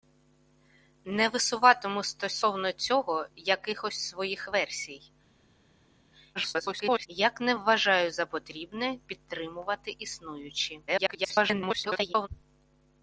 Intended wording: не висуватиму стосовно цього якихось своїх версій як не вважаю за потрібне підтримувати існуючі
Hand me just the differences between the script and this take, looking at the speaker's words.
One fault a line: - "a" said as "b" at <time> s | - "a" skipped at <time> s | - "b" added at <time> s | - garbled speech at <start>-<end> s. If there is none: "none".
- garbled speech at 6.3-7.1 s
- garbled speech at 10.9-12.3 s